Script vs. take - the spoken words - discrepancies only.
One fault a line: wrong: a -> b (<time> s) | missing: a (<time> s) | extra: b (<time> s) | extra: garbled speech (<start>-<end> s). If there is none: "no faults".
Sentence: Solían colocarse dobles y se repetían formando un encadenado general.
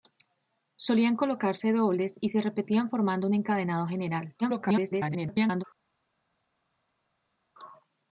extra: garbled speech (4.4-5.6 s)